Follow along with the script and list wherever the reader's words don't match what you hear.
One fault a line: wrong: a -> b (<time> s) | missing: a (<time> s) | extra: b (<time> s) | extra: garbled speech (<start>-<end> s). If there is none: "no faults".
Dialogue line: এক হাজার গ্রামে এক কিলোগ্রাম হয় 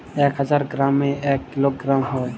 no faults